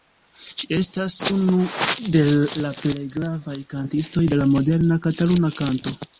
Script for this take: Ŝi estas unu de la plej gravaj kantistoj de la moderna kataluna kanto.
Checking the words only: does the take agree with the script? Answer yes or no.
yes